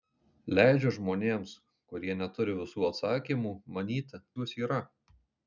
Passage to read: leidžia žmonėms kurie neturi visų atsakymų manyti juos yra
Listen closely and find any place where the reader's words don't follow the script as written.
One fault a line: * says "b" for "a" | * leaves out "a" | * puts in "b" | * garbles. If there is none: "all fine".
all fine